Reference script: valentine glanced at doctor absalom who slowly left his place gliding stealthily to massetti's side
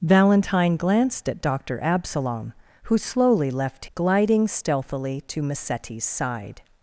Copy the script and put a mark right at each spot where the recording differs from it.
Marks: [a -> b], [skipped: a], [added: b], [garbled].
valentine glanced at doctor absalom who slowly left [skipped: his place] gliding stealthily to massetti's side